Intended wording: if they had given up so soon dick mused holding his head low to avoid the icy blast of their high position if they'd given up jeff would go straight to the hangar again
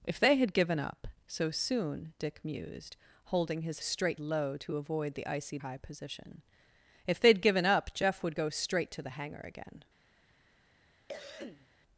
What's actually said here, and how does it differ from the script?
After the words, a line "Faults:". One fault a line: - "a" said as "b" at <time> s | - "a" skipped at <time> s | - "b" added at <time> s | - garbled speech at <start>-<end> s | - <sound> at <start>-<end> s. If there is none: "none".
if they had given up so soon dick mused holding his straight low to avoid the icy high position if they'd given up jeff would go straight to the hangar again
Faults:
- "head" said as "straight" at 3.8 s
- "blast of their" skipped at 5.6 s
- cough at 11.1-11.7 s